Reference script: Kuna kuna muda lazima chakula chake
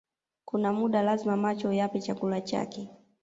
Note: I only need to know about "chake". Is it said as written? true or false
true